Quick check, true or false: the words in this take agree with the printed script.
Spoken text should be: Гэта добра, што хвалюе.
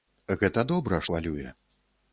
false